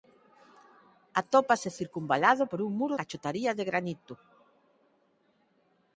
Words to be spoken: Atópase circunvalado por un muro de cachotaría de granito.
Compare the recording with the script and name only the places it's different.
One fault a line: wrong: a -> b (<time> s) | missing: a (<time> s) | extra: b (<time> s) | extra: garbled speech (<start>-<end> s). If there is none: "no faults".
missing: de (2.9 s)